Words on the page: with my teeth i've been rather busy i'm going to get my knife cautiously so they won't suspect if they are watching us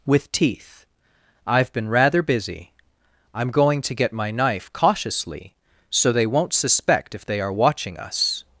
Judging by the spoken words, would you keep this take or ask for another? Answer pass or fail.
fail